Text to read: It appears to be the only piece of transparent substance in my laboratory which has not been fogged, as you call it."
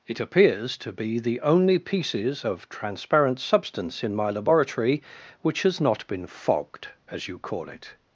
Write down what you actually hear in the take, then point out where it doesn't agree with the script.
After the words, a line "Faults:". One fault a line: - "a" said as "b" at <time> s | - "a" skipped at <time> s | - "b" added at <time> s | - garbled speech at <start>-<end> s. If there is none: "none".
It appears to be the only pieces of transparent substance in my laboratory which has not been fogged, as you call it."
Faults:
- "piece" said as "pieces" at 1.8 s